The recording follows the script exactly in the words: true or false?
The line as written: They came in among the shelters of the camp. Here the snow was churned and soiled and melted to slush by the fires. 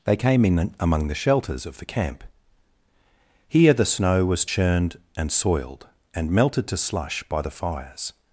true